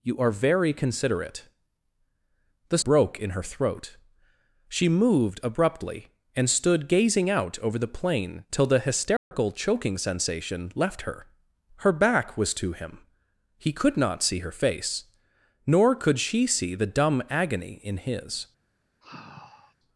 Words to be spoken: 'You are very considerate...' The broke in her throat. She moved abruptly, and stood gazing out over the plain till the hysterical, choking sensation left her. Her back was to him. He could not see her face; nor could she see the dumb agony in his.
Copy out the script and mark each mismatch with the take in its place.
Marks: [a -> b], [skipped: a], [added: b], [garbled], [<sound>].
'You are very considerate...' The broke in her throat. She moved abruptly, and stood gazing out over the plain till the hysterical, [dropout] choking sensation left her. Her back was to him. He could not see her face; nor could she see the dumb agony in his. [sigh]